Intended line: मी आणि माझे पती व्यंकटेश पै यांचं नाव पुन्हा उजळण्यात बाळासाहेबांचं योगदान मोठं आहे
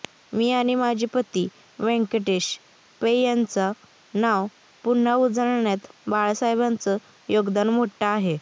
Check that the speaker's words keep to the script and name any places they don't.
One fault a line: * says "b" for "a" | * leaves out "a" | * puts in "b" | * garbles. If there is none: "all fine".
all fine